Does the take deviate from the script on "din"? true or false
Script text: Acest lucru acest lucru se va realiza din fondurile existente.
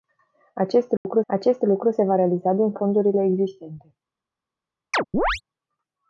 false